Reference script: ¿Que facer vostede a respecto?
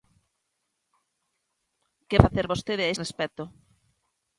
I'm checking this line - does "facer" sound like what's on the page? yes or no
yes